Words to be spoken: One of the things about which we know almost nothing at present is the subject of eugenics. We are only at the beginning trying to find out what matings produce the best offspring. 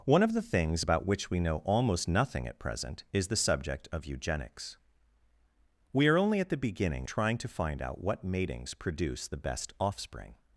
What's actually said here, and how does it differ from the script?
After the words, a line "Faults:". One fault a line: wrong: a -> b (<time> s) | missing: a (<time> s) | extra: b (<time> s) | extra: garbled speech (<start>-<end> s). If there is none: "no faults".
One of the things about which we know almost nothing at present is the subject of eugenics. We are only at the beginning trying to find out what matings produce the best offspring.
Faults:
no faults